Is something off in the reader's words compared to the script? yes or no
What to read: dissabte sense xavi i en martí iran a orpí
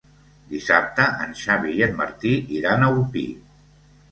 yes